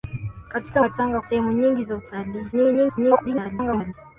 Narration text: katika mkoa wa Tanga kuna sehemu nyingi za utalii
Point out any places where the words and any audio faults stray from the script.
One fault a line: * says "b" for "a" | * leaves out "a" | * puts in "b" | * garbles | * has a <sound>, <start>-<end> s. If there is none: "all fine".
* leaves out "mkoa"
* leaves out "kuna"
* garbles